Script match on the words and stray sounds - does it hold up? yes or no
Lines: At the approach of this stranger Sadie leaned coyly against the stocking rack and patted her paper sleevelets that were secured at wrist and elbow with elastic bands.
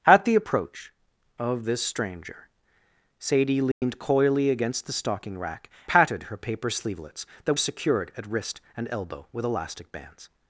no